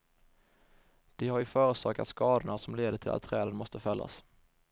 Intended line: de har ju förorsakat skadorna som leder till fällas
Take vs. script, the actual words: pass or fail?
fail